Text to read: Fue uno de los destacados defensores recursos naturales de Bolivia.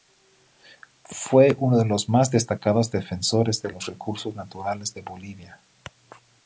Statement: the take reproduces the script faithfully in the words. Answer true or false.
false